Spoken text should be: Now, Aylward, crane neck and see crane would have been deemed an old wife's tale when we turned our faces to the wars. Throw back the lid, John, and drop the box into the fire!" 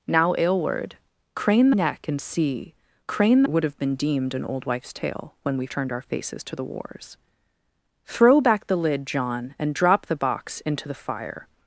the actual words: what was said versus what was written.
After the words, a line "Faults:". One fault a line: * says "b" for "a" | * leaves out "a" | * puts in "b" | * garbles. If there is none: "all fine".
Now, Aylward, crane neck and see crane would have been deemed an old wife's tale when we turned our faces to the wars. Throw back the lid, John, and drop the box into the fire!"
Faults:
all fine